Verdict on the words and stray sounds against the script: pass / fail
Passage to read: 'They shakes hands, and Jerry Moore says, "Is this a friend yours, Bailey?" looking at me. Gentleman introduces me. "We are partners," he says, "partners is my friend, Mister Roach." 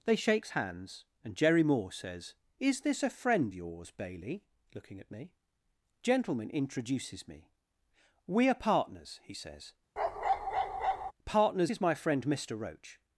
fail